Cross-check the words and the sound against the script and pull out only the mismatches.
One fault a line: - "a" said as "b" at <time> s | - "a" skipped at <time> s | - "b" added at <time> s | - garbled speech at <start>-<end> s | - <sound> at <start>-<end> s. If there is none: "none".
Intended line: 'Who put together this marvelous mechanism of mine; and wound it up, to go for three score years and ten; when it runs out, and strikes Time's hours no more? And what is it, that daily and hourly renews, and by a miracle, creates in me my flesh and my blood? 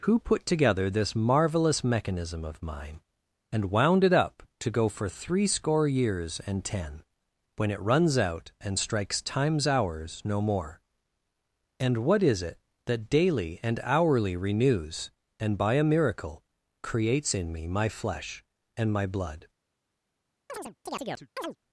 - chirp at 20.5-21.6 s